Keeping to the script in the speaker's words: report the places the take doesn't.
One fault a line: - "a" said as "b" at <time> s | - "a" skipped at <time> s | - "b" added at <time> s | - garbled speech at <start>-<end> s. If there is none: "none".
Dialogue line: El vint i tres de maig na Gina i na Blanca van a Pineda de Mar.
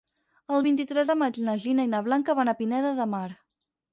none